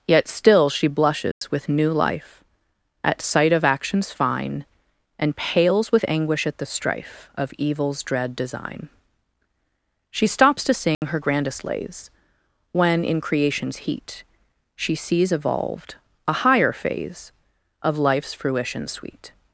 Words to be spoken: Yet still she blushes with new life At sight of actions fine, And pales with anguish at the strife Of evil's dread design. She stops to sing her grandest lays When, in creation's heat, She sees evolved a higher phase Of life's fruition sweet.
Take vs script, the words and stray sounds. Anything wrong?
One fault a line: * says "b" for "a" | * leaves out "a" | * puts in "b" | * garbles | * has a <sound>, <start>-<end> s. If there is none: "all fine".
* has a dropout, 1.3-1.4 s
* has a dropout, 10.9-11.0 s